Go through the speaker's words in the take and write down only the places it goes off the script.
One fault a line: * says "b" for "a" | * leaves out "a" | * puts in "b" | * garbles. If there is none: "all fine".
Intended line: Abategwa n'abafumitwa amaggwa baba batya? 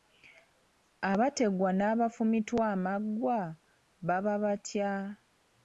all fine